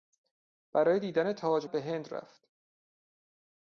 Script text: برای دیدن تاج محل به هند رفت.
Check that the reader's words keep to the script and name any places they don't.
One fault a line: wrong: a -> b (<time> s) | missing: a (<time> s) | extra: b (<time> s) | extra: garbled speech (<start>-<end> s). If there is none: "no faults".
missing: محل (1.7 s)